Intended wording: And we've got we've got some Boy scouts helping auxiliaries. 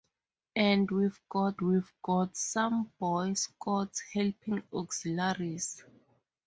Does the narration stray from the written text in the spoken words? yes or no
no